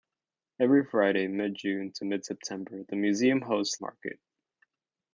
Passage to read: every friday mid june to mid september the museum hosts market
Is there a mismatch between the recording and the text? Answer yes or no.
no